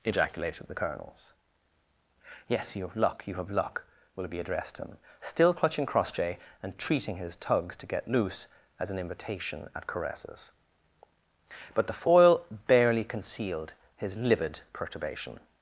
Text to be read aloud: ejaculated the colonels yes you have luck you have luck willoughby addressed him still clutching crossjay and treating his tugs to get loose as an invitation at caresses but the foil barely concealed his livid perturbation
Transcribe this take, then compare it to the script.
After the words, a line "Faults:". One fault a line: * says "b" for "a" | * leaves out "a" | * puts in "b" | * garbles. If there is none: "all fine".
ejaculated the colonels yes you have luck you have luck willoughby addressed him still clutching crossjay and treating his tugs to get loose as an invitation at caresses but the foil barely concealed his livid perturbation
Faults:
all fine